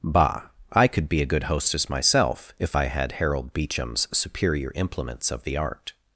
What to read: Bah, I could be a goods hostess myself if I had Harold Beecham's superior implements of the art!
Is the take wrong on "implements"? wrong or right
right